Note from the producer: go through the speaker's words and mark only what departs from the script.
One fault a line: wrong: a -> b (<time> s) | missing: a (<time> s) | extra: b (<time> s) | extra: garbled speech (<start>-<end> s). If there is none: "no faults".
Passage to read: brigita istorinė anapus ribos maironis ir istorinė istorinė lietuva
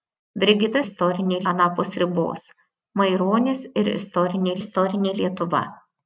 no faults